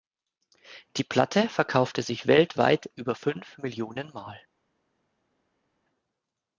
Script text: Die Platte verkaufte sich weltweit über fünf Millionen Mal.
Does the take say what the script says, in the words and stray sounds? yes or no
yes